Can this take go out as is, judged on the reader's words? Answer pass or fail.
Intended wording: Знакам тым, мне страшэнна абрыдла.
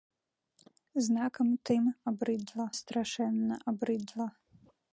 fail